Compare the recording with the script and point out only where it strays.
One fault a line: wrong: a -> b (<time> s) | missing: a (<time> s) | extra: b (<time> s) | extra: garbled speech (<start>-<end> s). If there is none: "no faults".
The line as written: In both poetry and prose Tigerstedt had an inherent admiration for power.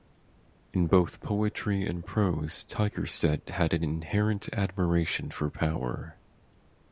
no faults